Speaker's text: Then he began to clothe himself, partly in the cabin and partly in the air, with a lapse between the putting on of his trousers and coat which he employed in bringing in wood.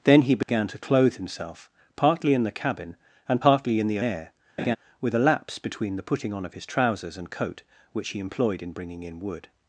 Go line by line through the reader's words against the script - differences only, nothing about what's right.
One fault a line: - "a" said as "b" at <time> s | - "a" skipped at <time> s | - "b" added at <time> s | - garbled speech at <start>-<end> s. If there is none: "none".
none